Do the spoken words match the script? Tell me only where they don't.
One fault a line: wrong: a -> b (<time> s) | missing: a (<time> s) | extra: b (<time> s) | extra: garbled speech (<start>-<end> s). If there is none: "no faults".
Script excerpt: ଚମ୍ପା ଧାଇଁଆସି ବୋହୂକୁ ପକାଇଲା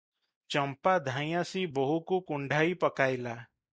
extra: କୁଣ୍ଢାଇ (2.3 s)